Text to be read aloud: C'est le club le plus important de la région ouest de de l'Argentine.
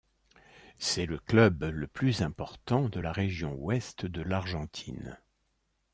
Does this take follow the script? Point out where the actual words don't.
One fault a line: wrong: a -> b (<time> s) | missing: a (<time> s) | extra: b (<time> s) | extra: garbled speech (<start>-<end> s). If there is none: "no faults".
missing: de (4.2 s)